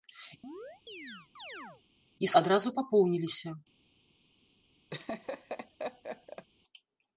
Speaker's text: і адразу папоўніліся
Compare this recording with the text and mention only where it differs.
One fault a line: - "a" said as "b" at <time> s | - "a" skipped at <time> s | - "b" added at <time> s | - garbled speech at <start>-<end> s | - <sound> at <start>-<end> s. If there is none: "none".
- chirp at 0.4-1.8 s
- laugh at 4.9-6.5 s